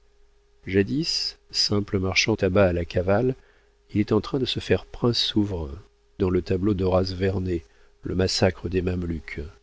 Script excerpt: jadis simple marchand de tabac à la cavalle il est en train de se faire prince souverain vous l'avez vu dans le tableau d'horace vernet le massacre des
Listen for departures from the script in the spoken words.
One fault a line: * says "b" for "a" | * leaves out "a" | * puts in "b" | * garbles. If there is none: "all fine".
* leaves out "de"
* leaves out "vous l'avez vu"